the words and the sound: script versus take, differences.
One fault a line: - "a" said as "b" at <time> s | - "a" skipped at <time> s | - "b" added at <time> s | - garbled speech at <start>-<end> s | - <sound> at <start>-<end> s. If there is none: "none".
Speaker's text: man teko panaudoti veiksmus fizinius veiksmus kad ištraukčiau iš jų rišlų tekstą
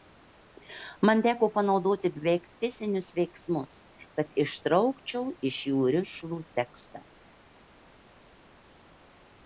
- "veiksmus" said as "beveik" at 2.1 s